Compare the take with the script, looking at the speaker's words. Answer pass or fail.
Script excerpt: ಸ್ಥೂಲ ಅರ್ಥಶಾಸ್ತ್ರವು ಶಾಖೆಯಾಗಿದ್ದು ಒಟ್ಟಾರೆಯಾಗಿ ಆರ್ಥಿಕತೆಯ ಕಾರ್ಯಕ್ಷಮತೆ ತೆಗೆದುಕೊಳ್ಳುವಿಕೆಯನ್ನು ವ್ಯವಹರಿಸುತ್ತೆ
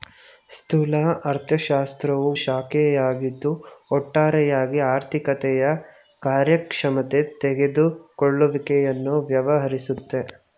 pass